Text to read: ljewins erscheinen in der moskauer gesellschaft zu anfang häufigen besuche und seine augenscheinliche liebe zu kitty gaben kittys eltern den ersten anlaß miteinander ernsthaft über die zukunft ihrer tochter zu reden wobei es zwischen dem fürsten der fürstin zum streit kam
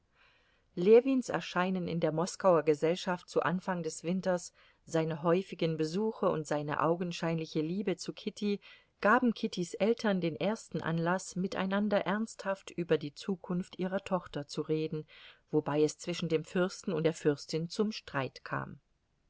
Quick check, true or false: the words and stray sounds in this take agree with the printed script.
false